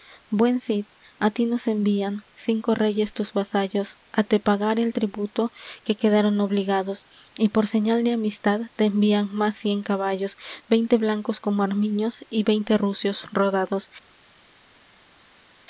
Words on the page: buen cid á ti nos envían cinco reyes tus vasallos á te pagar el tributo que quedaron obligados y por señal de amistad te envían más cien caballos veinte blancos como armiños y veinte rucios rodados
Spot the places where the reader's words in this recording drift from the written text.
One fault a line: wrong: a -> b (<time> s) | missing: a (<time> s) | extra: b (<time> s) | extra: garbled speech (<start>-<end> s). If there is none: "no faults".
no faults